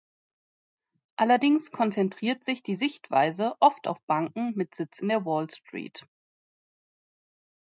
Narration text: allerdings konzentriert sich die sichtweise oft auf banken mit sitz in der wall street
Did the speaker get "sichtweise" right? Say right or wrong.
right